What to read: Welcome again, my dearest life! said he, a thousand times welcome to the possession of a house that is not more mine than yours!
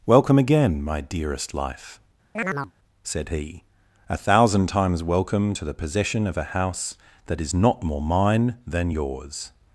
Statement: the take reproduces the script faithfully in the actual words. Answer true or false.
true